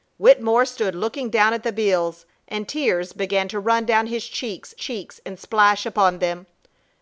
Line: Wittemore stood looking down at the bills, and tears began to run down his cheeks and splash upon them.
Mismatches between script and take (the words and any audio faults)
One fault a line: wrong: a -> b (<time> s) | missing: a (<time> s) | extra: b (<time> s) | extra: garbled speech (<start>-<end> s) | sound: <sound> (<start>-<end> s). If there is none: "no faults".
extra: cheeks (4.7 s)